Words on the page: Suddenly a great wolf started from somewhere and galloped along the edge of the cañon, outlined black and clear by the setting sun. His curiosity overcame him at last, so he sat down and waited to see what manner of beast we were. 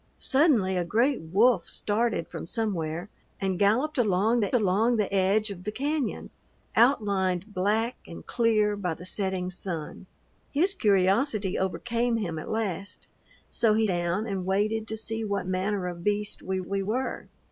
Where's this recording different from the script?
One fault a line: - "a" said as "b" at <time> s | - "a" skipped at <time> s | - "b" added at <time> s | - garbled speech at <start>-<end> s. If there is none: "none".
- "along the" added at 4.5 s
- "sat" skipped at 13.8 s
- "we" added at 16.7 s